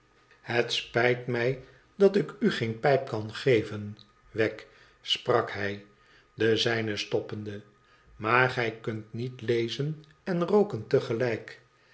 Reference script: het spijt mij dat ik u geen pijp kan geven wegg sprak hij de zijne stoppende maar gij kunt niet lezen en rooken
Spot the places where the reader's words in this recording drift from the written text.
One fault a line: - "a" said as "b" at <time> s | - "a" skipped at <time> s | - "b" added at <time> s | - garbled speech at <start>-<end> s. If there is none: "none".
none